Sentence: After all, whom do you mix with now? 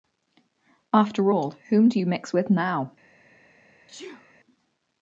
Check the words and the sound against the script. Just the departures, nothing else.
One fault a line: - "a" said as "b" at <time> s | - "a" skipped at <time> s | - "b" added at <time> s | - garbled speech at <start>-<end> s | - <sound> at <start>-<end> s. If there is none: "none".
- sneeze at 3.9-4.3 s